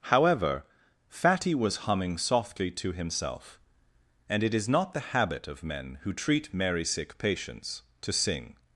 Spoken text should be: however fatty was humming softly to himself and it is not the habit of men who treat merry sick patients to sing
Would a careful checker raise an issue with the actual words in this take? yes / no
no